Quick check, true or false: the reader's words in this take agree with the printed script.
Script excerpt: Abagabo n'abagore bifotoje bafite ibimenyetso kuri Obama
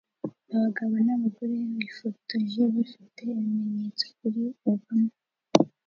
true